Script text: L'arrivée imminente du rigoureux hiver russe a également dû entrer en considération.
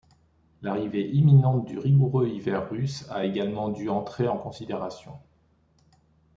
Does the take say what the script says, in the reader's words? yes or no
yes